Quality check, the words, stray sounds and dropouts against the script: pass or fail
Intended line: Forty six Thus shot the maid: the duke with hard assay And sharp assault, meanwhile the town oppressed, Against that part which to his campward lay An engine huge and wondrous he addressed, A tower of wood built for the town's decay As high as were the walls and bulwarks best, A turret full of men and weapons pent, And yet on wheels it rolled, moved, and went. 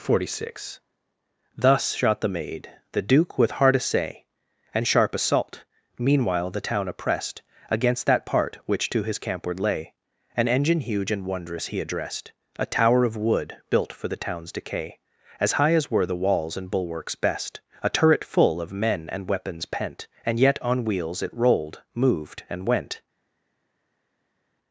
pass